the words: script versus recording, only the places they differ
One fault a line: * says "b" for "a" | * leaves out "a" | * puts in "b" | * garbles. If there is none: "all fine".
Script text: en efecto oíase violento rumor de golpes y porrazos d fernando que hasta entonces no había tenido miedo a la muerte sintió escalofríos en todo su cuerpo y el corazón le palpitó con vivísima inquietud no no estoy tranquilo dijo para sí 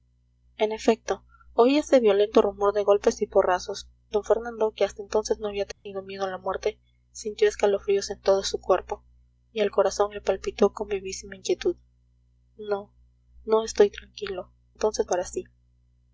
* says "entonces" for "dijo"